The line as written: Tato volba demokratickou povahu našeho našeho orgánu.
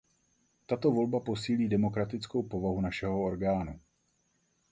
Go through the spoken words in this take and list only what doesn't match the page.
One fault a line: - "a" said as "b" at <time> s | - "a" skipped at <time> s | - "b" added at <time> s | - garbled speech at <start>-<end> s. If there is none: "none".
- "posílí" added at 1.2 s
- "našeho" skipped at 3.2 s